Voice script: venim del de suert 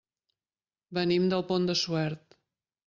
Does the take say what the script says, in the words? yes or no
no